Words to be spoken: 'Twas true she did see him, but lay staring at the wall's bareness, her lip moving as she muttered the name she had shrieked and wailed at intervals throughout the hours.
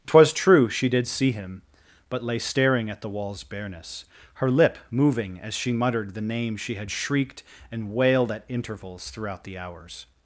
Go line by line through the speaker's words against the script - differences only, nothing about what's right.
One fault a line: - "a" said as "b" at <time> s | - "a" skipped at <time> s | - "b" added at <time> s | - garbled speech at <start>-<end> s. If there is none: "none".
none